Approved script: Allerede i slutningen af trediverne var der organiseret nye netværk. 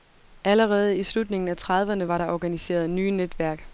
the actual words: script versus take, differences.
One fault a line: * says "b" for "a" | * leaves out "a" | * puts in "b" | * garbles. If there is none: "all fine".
all fine